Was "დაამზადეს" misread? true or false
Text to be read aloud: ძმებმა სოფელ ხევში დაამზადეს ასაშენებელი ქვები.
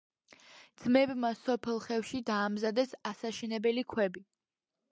false